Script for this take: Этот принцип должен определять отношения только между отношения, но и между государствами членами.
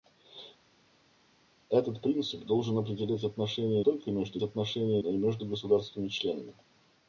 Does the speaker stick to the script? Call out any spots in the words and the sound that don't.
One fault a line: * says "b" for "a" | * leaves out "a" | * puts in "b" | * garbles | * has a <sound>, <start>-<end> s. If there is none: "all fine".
all fine